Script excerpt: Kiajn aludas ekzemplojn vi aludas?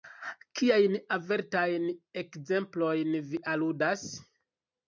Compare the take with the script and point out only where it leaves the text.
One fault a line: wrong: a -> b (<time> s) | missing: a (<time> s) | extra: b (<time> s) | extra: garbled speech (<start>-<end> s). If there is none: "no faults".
wrong: aludas -> avertajn (1.2 s)